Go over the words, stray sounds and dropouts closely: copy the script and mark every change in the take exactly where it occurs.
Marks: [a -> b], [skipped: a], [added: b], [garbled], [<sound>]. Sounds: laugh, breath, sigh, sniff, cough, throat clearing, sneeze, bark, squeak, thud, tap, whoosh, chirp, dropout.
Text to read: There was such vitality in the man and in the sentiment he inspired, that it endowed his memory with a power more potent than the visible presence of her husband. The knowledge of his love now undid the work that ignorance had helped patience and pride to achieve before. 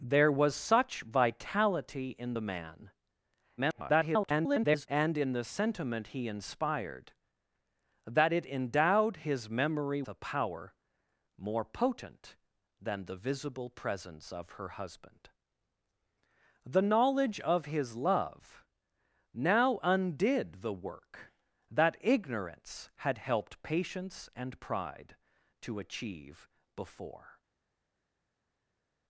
There was such vitality in the man [garbled] and in the sentiment he inspired, that it endowed his memory [skipped: with] a power more potent than the visible presence of her husband. The knowledge of his love now undid the work that ignorance had helped patience and pride to achieve before.